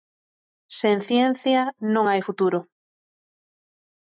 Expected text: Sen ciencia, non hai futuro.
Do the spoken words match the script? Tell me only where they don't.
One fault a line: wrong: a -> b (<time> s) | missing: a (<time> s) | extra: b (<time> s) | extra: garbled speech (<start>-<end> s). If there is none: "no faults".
no faults